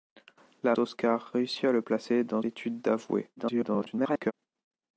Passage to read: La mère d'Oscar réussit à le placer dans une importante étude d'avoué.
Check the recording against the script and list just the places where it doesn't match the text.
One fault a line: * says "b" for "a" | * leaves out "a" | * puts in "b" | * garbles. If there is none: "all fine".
* leaves out "mère"
* leaves out "une importante"
* garbles